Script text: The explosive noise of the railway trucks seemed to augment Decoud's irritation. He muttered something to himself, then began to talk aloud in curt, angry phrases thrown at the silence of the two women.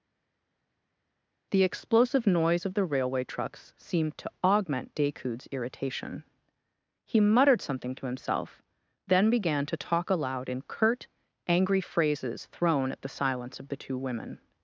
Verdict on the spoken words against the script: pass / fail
pass